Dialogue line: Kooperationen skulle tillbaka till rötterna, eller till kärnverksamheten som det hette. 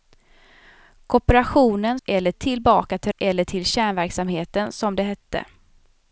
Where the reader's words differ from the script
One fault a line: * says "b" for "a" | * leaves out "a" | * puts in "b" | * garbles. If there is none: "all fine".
* says "eller" for "skulle"
* leaves out "rötterna"